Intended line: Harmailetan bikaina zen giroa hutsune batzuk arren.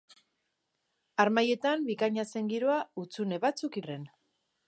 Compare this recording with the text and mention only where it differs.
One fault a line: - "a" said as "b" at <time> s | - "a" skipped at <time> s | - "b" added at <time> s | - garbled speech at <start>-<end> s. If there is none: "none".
none